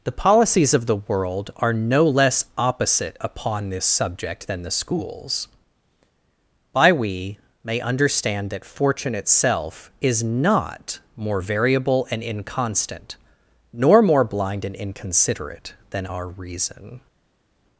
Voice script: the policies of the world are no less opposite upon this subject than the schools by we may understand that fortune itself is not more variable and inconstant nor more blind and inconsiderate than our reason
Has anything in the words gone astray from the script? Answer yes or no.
no